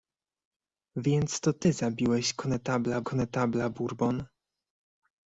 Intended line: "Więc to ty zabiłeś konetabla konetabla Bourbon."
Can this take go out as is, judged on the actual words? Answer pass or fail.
pass